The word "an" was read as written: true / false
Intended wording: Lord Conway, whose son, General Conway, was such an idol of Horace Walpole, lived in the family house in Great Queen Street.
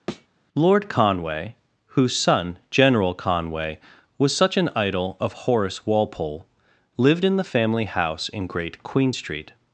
true